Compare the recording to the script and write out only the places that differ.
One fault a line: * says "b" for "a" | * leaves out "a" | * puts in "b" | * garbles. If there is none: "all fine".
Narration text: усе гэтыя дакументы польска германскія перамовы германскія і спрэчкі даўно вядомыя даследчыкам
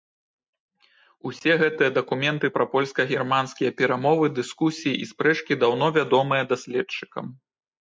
* puts in "пра"
* says "дыскусіі" for "германскія"